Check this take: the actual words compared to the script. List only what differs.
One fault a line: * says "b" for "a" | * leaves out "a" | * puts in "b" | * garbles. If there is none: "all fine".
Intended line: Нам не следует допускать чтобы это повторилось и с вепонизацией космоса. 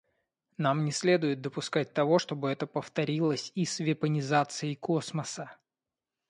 * puts in "того"